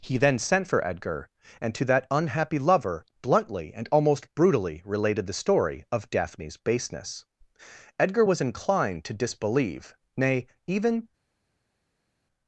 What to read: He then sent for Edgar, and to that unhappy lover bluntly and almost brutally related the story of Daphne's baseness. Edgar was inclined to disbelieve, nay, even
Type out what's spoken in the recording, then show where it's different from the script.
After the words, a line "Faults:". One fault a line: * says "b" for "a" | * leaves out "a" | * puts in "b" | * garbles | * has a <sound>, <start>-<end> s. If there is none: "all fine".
He then sent for Edgar, and to that unhappy lover bluntly and almost brutally related the story of Daphne's baseness. Edgar was inclined to disbelieve, nay, even
Faults:
all fine